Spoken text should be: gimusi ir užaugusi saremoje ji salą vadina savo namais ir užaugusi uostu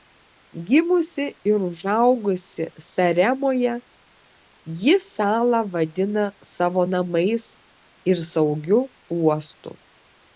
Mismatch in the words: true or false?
true